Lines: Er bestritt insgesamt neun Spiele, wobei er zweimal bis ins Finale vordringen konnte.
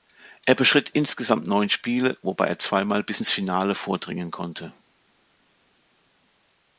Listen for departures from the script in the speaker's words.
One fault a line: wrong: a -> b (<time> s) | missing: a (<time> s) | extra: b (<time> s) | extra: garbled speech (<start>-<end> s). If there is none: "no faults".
no faults